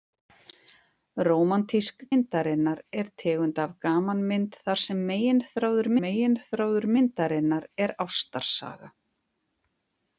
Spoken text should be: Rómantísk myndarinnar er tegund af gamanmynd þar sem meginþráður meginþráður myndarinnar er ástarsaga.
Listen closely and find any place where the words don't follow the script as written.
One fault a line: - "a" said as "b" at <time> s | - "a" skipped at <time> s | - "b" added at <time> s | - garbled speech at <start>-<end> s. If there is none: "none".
none